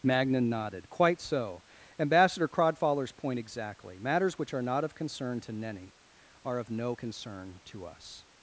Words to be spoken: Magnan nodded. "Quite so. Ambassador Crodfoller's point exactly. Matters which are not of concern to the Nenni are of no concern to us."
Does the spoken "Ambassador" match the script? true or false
true